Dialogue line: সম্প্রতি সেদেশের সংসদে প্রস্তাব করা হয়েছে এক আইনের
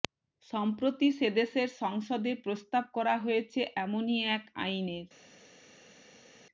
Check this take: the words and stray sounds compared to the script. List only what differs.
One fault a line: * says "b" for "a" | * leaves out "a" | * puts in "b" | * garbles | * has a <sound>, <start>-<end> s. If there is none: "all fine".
* puts in "এমনই"